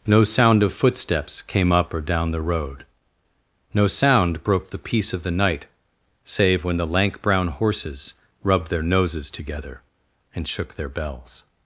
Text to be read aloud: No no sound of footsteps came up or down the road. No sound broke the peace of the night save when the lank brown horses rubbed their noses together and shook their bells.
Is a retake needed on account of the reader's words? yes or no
yes